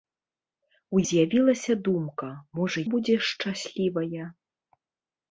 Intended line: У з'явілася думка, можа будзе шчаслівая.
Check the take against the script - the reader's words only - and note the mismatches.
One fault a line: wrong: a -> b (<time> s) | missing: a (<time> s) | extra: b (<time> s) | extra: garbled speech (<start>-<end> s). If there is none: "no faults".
no faults